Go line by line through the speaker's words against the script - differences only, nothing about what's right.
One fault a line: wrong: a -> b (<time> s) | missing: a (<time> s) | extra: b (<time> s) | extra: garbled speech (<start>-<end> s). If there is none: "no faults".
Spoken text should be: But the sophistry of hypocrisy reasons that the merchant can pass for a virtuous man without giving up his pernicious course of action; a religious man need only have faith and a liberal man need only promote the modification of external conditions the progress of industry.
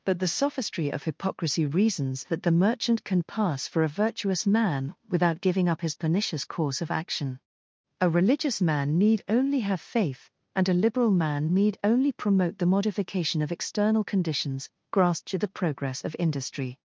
extra: grasp to (14.9 s)